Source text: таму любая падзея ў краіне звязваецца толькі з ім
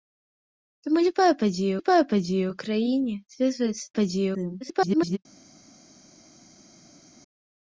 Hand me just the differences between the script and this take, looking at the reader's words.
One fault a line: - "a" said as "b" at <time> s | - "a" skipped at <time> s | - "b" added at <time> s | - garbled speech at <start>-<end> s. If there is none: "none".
- "любая падзея" added at 1.8 s
- "толькі" said as "падзея" at 4.0 s
- garbled speech at 4.6-5.2 s